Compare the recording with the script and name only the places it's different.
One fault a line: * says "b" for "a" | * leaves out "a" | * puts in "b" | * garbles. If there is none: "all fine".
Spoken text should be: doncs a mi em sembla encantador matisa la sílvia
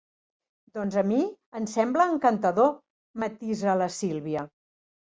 all fine